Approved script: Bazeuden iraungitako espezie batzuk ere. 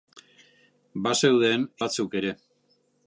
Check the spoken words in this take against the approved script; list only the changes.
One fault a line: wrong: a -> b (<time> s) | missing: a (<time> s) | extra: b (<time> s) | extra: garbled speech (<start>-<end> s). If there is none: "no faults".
missing: iraungitako espezie (1.7 s)